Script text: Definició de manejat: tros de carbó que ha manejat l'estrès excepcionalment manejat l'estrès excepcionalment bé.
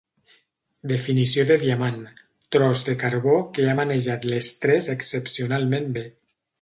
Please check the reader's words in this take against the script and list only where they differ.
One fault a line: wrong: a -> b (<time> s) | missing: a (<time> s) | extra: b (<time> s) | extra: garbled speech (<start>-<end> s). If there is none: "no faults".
wrong: manejat -> diamant (1.6 s)
missing: manejat l'estrès excepcionalment (5.9 s)